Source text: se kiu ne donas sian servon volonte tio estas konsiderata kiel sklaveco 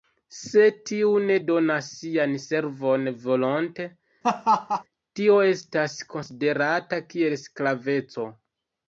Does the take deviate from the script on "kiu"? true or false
true